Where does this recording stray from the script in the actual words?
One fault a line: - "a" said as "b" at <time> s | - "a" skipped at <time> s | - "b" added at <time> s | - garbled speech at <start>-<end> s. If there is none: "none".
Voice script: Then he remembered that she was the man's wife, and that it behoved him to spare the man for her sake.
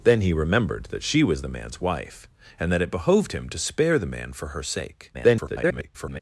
- garbled speech at 5.1-6.2 s